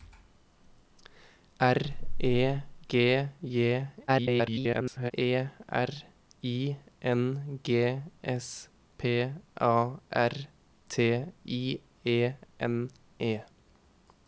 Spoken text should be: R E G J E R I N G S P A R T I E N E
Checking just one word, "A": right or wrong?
right